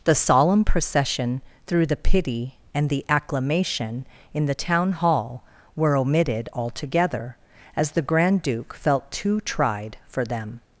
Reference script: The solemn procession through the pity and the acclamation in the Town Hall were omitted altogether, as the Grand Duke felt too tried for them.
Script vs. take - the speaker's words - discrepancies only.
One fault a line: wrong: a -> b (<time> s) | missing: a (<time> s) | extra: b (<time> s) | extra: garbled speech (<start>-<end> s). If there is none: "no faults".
no faults